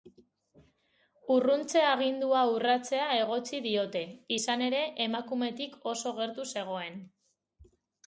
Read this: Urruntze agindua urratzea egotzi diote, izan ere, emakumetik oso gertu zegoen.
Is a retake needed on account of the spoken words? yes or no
no